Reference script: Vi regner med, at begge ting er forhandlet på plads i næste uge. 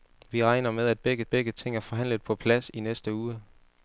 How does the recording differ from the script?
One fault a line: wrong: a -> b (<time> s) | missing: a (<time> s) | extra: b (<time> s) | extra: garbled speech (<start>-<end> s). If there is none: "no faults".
extra: begge (1.3 s)